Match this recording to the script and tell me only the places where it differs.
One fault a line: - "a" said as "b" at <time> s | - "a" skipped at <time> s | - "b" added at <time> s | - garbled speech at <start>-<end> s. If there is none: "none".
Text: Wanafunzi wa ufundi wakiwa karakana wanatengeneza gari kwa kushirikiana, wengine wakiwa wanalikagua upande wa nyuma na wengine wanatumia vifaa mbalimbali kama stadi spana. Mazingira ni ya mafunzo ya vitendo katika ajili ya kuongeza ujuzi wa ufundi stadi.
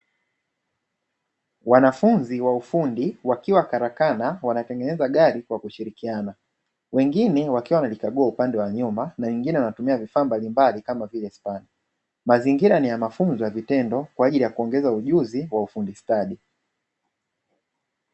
- "stadi" said as "vile" at 11.1 s
- "katika" said as "kwa" at 14.2 s